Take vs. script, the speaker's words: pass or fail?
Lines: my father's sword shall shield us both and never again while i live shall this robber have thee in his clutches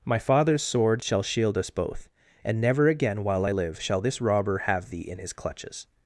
pass